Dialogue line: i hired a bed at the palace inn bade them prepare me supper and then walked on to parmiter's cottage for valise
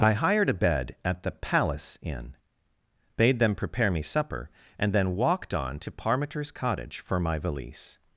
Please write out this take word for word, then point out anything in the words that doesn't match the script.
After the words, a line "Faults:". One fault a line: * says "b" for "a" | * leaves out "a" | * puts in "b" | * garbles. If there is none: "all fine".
i hired a bed at the palace inn bade them prepare me supper and then walked on to parmiter's cottage for my valise
Faults:
* puts in "my"